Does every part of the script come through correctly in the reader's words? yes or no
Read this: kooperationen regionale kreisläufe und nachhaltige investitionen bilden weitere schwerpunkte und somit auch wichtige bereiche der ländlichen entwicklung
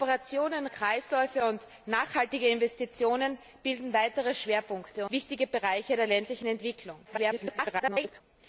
no